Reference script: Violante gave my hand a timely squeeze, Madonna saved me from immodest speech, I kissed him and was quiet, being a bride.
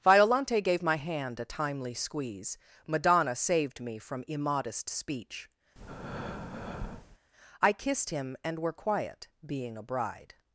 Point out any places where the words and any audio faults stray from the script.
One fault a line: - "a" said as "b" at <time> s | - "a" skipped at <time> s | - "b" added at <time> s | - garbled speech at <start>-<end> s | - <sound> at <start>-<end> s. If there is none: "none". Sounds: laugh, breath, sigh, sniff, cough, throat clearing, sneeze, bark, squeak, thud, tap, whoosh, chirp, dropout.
- breath at 5.8-7.2 s
- "was" said as "were" at 8.6 s